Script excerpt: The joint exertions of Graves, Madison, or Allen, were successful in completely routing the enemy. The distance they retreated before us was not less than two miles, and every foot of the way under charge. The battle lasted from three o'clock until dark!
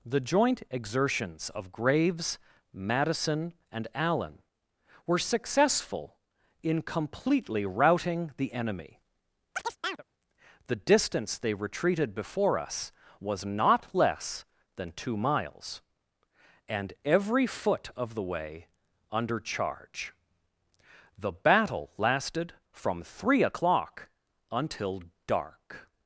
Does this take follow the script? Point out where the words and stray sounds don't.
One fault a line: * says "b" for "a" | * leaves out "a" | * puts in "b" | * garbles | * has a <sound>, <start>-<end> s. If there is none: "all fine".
* says "and" for "or"
* has a chirp, 9.5-10.0 s